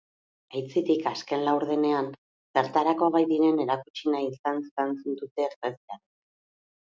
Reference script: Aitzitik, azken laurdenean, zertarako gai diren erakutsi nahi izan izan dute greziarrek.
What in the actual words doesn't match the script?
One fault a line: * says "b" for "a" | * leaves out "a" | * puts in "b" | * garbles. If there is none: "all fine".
all fine